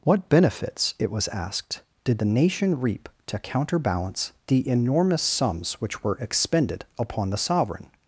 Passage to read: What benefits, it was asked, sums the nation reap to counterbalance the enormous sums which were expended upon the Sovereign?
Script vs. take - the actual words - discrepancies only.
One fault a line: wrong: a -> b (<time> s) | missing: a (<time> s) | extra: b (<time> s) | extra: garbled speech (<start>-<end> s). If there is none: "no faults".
wrong: sums -> did (2.0 s)